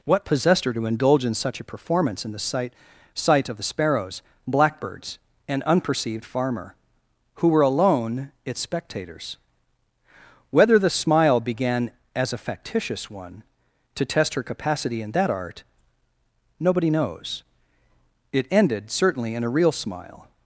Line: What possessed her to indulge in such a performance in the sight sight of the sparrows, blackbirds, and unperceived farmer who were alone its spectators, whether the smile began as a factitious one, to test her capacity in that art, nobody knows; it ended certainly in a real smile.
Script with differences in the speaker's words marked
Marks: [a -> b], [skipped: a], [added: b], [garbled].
What possessed her to indulge in such a performance in the sight sight of the sparrows, blackbirds, and unperceived farmer who were alone its spectators, whether the smile began as a factitious one, to test her capacity in that art, nobody knows; it ended certainly in a real smile.